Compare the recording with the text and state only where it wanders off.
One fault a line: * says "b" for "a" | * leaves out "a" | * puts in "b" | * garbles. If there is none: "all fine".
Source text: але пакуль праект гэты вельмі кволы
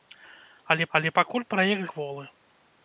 * puts in "але"
* leaves out "гэты вельмі"